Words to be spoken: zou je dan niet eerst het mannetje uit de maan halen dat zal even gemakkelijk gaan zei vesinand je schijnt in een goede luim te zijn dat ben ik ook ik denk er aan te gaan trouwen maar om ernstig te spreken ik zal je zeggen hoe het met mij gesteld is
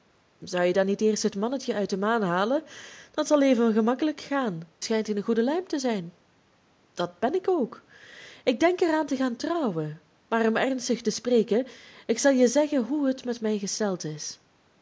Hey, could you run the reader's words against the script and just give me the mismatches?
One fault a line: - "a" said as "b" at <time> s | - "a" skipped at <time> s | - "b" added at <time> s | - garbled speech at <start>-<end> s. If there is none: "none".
- "zei vesinand je" skipped at 4.6 s